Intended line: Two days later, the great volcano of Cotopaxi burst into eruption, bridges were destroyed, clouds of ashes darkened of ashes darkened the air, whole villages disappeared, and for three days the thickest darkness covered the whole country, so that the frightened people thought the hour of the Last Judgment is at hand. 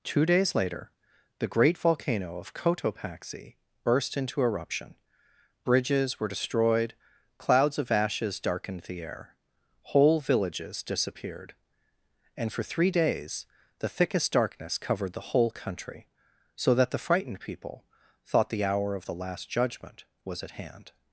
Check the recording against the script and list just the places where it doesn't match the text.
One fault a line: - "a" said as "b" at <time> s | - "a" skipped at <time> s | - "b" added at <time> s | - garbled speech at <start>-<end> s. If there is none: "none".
- "of ashes darkened" skipped at 8.8 s
- "is" said as "was" at 20.2 s